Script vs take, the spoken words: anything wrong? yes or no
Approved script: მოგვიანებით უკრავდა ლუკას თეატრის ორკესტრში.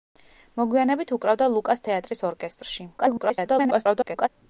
yes